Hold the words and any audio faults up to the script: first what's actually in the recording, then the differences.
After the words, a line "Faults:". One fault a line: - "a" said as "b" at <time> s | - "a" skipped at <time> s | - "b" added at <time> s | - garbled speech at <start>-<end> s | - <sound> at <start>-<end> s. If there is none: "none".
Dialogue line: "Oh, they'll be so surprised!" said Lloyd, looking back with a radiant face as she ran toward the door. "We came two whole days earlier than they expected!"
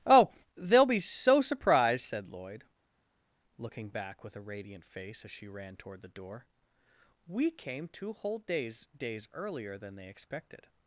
"Oh, they'll be so surprised!" said Lloyd, looking back with a radiant face as she ran toward the door. "We came two whole days days earlier than they expected!"
Faults:
- "days" added at 9.0 s